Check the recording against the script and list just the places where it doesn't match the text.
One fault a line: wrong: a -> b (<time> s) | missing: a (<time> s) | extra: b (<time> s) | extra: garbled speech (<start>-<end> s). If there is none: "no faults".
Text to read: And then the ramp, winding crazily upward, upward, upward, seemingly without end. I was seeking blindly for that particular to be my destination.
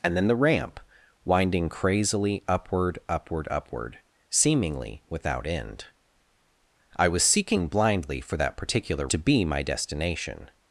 no faults